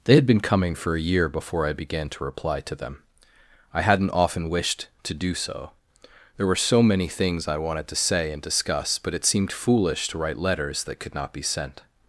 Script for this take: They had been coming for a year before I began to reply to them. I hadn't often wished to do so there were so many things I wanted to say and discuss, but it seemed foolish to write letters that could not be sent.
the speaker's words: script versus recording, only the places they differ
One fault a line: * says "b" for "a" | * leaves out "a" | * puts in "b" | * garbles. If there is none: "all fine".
all fine